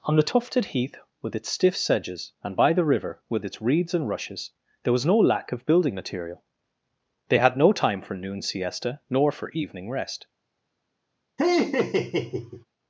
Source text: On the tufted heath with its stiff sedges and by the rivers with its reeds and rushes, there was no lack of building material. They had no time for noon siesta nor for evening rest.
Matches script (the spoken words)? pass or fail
fail